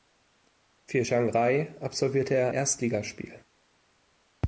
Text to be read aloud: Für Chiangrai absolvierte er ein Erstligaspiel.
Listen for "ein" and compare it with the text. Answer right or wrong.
wrong